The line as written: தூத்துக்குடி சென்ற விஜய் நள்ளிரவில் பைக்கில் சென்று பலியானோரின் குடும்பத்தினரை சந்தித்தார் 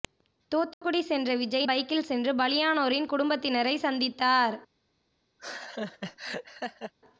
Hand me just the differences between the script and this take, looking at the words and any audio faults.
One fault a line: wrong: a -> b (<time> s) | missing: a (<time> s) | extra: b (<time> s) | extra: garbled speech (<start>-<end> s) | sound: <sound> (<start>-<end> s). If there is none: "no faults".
sound: dropout (0.7-0.8 s)
missing: நள்ளிரவில் (1.7 s)
sound: laugh (5.4-6.9 s)